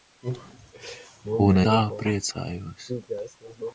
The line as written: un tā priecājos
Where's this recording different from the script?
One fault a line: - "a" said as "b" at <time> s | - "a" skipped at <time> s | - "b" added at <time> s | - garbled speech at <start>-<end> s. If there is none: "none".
none